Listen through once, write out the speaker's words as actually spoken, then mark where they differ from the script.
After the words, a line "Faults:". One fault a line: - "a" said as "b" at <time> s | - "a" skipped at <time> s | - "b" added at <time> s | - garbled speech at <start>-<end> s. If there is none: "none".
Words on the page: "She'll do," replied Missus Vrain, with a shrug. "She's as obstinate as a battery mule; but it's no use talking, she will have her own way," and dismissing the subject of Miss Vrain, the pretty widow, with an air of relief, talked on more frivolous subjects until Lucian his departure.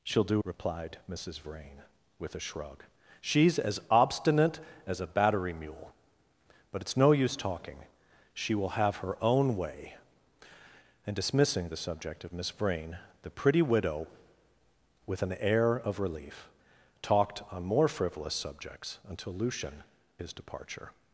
"She'll do," replied Missus Vrain, with a shrug. "She's as obstinate as a battery mule; but it's no use talking, she will have her own way," and dismissing the subject of Miss Vrain, the pretty widow, with an air of relief, talked on more frivolous subjects until Lucian his departure.
Faults:
none